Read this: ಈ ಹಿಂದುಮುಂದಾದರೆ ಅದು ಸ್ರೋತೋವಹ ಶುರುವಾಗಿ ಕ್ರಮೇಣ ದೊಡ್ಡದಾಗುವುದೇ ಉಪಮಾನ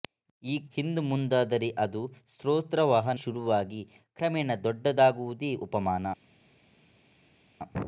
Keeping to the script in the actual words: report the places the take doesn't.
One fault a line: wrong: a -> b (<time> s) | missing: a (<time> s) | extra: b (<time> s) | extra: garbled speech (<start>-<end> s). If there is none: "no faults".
no faults